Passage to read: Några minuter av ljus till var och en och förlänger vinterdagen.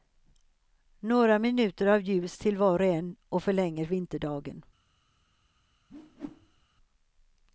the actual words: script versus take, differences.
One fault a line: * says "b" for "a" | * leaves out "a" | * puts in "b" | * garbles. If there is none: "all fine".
all fine